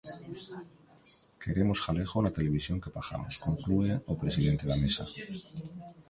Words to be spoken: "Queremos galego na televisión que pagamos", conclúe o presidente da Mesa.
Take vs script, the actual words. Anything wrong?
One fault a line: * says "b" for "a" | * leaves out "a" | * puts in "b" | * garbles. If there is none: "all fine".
all fine